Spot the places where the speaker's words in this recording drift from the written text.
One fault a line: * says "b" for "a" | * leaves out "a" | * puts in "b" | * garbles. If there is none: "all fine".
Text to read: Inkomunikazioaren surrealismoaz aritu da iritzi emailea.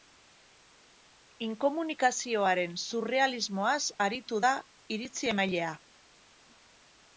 all fine